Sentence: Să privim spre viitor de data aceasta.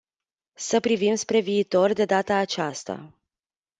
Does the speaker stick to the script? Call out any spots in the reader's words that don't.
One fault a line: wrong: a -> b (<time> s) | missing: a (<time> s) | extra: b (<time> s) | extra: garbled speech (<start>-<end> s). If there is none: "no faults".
no faults